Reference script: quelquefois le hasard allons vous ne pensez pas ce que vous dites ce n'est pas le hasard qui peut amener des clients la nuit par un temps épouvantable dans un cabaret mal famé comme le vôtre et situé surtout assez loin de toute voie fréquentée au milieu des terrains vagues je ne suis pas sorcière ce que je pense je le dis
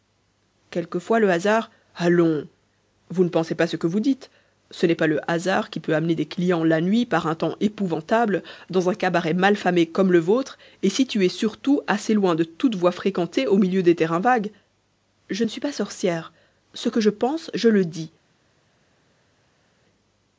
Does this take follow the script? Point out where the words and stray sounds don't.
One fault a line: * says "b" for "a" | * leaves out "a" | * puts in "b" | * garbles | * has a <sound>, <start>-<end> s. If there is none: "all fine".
all fine